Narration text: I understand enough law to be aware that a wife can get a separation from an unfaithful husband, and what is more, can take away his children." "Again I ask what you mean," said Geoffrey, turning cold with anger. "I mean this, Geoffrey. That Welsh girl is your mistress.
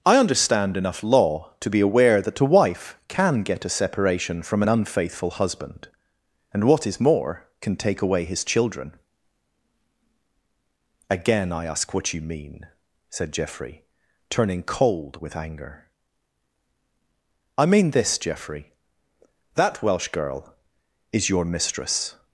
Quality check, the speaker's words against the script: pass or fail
pass